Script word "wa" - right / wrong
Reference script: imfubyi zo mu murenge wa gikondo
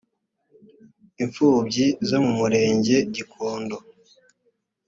wrong